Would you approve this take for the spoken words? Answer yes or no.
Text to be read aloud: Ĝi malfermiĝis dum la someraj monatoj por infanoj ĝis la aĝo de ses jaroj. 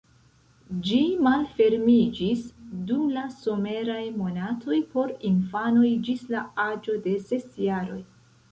yes